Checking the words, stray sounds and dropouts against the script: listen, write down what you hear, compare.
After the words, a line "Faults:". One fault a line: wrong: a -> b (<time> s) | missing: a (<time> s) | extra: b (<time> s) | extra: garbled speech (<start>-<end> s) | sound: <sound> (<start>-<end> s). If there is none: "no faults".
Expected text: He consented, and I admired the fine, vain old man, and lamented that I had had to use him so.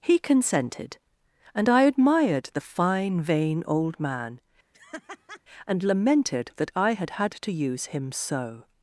He consented, and I admired the fine, vain old man, and lamented that I had had to use him so.
Faults:
sound: laugh (4.7-5.4 s)